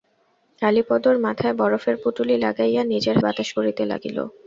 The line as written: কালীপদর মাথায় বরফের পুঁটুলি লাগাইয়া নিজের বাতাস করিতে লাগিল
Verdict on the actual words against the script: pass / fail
pass